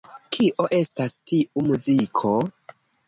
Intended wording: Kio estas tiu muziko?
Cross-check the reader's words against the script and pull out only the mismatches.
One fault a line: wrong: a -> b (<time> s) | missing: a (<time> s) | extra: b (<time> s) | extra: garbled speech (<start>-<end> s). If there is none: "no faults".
no faults